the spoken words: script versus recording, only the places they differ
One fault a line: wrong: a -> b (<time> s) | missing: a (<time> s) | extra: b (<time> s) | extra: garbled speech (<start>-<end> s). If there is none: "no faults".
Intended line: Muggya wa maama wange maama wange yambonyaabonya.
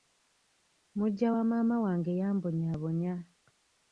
missing: maama wange (2.1 s)